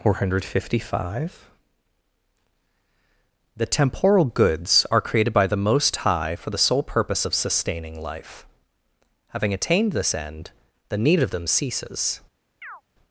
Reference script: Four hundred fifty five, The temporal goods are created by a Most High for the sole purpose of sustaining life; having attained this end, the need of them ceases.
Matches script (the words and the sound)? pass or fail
fail